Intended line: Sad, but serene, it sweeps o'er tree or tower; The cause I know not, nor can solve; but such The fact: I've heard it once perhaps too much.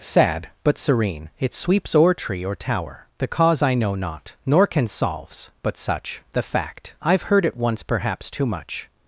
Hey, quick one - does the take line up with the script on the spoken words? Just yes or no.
no